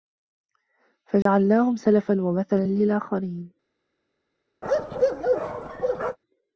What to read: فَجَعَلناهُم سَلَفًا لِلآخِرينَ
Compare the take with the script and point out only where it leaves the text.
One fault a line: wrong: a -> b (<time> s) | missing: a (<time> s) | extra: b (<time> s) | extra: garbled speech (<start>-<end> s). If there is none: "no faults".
extra: وَمَثَلًا (2.2 s)